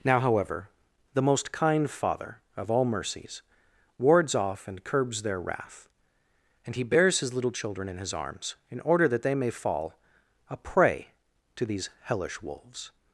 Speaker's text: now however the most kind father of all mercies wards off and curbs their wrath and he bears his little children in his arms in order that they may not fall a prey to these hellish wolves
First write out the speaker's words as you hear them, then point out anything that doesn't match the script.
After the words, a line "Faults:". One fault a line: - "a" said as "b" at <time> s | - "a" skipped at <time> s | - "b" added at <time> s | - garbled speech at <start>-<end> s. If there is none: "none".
now however the most kind father of all mercies wards off and curbs their wrath and he bears his little children in his arms in order that they may fall a prey to these hellish wolves
Faults:
- "not" skipped at 9.5 s